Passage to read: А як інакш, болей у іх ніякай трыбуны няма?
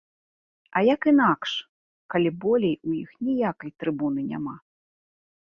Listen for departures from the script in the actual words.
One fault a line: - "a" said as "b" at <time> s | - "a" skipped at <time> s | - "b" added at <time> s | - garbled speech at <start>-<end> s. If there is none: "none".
- "калі" added at 2.1 s